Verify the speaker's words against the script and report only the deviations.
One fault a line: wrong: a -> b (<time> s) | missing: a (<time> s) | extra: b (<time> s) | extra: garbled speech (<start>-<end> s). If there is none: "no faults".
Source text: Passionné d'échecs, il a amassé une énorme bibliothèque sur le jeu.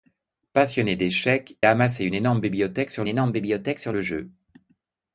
missing: il (1.6 s)
extra: énorme bibliothèque sur (3.1 s)